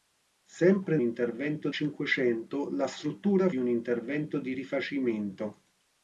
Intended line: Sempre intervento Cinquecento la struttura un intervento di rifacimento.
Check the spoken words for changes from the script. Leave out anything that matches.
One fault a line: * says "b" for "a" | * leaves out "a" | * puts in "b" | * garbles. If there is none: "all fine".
all fine